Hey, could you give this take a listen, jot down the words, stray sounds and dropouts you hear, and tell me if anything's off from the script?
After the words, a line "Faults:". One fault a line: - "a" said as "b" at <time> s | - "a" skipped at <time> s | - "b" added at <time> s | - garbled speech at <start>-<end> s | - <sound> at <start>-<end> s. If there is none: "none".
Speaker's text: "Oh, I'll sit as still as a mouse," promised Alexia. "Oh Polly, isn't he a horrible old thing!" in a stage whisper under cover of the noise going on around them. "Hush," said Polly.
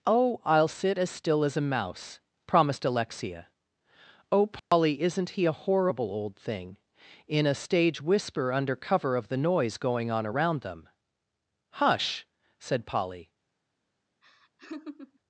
"Oh, I'll sit as still as a mouse," promised Alexia. "Oh Polly, isn't he a horrible old thing!" in a stage whisper under cover of the noise going on around them. "Hush," said Polly.
Faults:
- dropout at 4.6-4.7 s
- laugh at 14.2-15.2 s